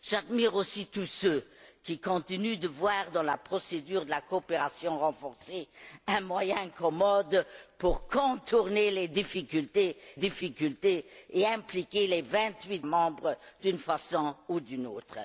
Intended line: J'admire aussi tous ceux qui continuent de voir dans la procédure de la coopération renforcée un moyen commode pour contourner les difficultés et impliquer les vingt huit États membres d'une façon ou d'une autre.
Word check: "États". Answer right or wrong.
wrong